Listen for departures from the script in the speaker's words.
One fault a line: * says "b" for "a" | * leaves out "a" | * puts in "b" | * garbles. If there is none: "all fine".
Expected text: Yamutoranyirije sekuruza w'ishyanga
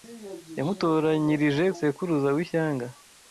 all fine